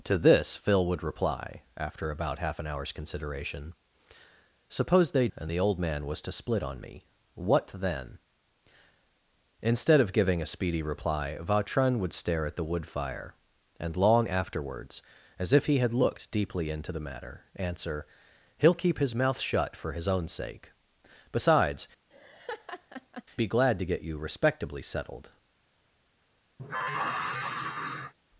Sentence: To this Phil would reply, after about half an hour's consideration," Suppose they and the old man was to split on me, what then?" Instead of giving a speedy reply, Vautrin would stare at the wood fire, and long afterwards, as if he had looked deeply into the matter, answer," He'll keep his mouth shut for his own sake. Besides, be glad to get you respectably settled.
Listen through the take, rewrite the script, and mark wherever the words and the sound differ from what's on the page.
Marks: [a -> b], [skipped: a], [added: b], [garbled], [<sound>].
To this Phil would reply, after about half an hour's consideration," Suppose they and the old man was to split on me, what then?" Instead of giving a speedy reply, Vautrin would stare at the wood fire, and long afterwards, as if he had looked deeply into the matter, answer," He'll keep his mouth shut for his own sake. Besides, [laugh] be glad to get you respectably settled. [sigh]